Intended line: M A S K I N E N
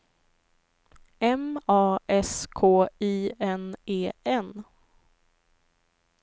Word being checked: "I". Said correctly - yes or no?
yes